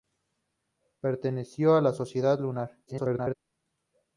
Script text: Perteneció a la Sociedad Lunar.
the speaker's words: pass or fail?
fail